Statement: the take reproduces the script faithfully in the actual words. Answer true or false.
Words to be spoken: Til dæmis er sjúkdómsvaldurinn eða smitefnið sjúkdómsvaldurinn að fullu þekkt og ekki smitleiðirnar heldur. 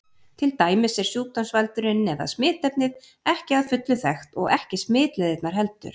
false